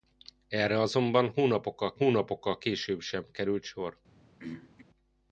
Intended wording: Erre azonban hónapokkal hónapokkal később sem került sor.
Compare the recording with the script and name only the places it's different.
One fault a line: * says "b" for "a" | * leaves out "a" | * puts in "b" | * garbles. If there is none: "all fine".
all fine